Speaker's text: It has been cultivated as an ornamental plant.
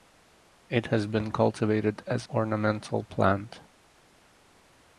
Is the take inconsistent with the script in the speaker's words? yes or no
yes